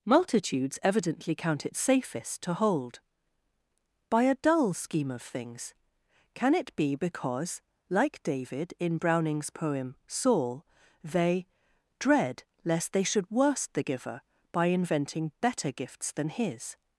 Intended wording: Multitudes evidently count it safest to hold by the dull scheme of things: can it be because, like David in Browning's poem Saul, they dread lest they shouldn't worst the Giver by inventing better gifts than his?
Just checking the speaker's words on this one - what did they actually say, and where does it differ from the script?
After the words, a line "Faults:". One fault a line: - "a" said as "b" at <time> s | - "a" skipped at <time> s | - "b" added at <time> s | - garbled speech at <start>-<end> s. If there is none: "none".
Multitudes evidently count it safest to hold by a dull scheme of things: can it be because, like David in Browning's poem Saul, they dread lest they should worst the Giver by inventing better gifts than his?
Faults:
- "the" said as "a" at 4.2 s
- "shouldn't" said as "should" at 13.0 s